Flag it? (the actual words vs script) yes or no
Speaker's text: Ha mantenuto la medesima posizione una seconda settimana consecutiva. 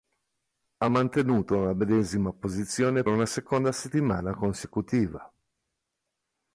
no